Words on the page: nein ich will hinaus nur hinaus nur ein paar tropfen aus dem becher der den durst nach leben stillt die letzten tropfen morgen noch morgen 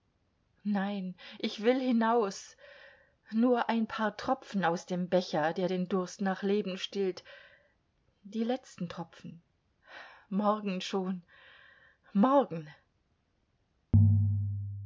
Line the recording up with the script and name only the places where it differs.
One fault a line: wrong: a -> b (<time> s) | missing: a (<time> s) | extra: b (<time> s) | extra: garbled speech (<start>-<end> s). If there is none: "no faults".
missing: hinaus nur (3.7 s)
wrong: noch -> schon (10.8 s)